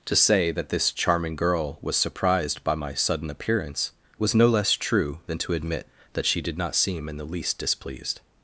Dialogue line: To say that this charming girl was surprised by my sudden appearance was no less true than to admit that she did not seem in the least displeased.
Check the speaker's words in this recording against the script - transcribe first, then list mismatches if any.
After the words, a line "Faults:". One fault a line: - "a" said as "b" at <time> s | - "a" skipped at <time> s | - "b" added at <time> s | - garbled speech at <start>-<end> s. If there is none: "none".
To say that this charming girl was surprised by my sudden appearance was no less true than to admit that she did not seem in the least displeased.
Faults:
none